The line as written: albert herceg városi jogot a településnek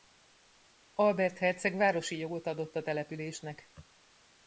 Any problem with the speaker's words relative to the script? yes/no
yes